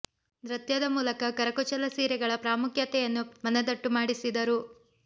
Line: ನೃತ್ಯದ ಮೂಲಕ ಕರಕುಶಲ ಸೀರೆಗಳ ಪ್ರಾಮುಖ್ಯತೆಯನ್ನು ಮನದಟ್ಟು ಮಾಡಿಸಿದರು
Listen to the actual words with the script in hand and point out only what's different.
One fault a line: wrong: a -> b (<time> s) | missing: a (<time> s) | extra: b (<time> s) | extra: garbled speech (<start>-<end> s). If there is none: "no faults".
no faults